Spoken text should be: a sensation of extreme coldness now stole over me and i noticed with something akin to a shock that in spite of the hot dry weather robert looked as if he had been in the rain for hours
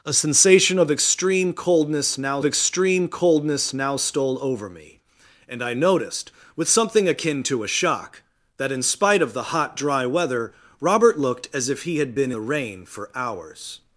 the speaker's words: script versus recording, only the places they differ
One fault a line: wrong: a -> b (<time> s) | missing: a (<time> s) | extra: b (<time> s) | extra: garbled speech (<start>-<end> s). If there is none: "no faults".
extra: extreme coldness now (2.4 s)
missing: in (12.3 s)